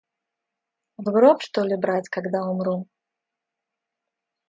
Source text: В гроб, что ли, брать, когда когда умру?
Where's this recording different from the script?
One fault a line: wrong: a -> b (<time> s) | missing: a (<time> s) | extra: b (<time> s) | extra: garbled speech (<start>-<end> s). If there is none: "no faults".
missing: когда (2.4 s)